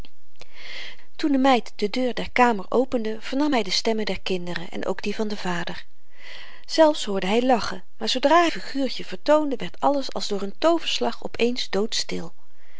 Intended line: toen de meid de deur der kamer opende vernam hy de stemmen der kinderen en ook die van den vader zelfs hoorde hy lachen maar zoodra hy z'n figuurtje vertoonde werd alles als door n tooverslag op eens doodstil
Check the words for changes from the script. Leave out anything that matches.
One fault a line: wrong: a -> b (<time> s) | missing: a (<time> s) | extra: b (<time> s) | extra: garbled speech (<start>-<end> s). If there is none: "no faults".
missing: hy z'n (8.4 s)